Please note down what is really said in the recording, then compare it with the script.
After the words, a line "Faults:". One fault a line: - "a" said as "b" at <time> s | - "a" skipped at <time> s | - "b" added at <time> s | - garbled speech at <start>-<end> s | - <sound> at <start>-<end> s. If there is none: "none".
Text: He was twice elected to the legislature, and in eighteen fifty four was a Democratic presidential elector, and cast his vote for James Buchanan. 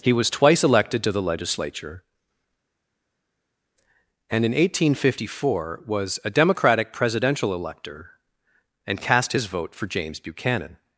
He was twice elected to the legislature, and in eighteen fifty four was a Democratic presidential elector, and cast his vote for James Buchanan.
Faults:
none